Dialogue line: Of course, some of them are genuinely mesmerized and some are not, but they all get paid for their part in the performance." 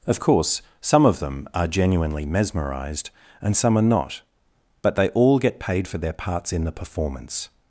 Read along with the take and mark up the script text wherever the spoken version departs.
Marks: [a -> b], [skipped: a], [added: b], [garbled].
Of course, some of them are genuinely mesmerized and some are not, but they all get paid for their [part -> parts] in the performance."